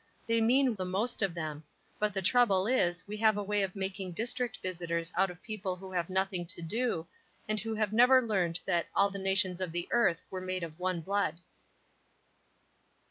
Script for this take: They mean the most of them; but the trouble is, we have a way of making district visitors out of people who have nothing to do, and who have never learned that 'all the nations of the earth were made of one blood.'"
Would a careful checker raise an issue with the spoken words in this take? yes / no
no